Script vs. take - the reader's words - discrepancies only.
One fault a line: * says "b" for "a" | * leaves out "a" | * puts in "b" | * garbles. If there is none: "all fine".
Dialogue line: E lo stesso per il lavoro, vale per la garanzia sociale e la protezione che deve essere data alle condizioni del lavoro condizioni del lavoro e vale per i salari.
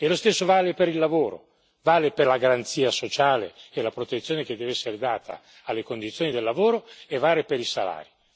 * puts in "vale"
* leaves out "condizioni del lavoro"